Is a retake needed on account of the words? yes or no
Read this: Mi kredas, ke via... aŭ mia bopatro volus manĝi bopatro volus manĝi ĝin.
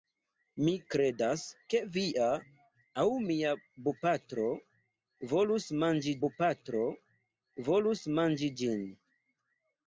no